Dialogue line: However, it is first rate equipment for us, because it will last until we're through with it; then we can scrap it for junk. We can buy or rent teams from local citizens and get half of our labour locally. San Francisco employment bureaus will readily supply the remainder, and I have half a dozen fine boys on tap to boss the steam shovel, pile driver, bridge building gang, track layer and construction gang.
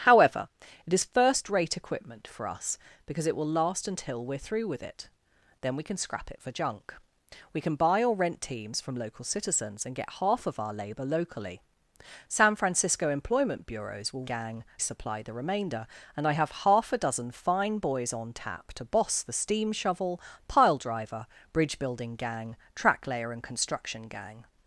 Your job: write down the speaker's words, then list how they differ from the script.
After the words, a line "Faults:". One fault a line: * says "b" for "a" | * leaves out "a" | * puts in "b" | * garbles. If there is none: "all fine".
However, it is first rate equipment for us, because it will last until we're through with it; then we can scrap it for junk. We can buy or rent teams from local citizens and get half of our labour locally. San Francisco employment bureaus will gang supply the remainder, and I have half a dozen fine boys on tap to boss the steam shovel, pile driver, bridge building gang, track layer and construction gang.
Faults:
* says "gang" for "readily"